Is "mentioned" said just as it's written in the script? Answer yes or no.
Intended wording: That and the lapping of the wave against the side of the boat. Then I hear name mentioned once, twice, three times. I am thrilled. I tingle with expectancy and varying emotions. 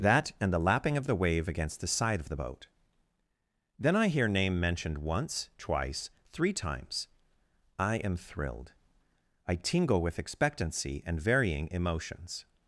yes